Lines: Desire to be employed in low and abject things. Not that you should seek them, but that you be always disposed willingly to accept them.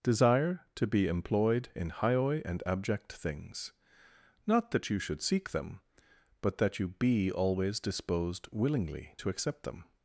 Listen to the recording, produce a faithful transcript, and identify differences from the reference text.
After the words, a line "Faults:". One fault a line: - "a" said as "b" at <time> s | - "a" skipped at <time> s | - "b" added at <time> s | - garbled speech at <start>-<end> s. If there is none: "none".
Desire to be employed in hioi and abject things. Not that you should seek them, but that you be always disposed willingly to accept them.
Faults:
- "low" said as "hioi" at 1.9 s